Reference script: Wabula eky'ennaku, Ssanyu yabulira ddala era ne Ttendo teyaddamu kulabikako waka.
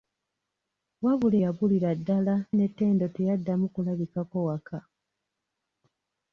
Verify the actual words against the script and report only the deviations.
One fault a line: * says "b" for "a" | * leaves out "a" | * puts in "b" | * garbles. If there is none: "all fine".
* leaves out "eky'ennaku Ssanyu"
* leaves out "era"